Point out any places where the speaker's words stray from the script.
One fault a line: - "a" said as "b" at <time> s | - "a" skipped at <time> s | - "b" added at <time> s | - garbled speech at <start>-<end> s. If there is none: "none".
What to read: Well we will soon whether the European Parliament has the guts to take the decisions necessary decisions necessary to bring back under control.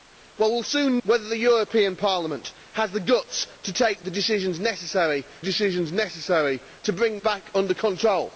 none